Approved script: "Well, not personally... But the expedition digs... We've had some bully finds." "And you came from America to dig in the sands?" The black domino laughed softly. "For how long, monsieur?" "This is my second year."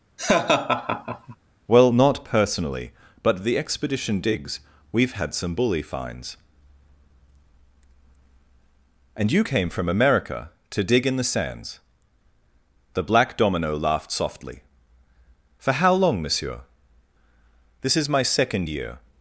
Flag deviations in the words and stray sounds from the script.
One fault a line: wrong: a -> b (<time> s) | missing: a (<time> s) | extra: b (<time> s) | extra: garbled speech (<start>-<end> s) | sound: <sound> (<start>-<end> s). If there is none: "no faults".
sound: laugh (0.2-1.4 s)